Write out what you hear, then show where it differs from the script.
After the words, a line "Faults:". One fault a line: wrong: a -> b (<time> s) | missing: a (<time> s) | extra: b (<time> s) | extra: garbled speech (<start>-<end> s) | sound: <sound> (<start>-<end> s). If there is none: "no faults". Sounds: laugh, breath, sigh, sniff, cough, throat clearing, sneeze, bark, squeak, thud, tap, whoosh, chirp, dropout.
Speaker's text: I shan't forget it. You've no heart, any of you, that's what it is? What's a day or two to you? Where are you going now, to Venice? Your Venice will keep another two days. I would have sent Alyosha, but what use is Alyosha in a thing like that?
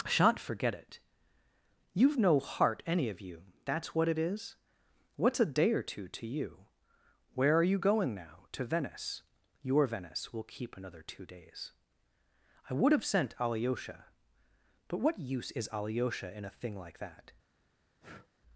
shan't forget it. You've no heart, any of you, that's what it is? What's a day or two to you? Where are you going now, to Venice? Your Venice will keep another two days. I would have sent Alyosha, but what use is Alyosha in a thing like that?
Faults:
missing: I (0.1 s)
sound: breath (18.0-18.3 s)